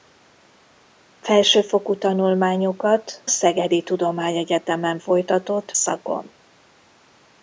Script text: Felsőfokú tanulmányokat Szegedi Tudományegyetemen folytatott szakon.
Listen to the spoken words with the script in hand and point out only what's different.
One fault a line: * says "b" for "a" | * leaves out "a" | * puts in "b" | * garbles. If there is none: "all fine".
all fine